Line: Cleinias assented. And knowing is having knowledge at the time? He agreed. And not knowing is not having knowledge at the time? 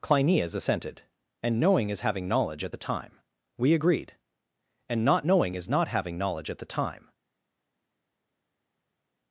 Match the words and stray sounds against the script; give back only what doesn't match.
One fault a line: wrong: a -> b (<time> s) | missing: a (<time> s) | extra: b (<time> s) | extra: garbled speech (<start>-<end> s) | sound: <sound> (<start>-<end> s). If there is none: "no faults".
wrong: He -> We (3.6 s)